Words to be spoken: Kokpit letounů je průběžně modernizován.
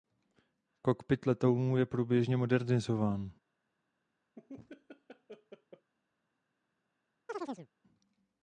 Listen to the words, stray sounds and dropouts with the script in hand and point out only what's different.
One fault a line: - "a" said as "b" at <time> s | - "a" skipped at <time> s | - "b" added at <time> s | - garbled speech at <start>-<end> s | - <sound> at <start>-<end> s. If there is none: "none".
- laugh at 4.4-5.9 s
- chirp at 7.3-7.7 s